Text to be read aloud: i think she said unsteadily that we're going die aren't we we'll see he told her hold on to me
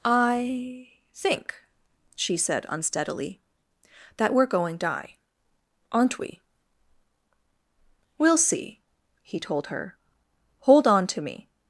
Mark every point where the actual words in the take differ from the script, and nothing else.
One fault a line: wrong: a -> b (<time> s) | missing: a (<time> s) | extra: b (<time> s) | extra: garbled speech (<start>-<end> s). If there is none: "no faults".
no faults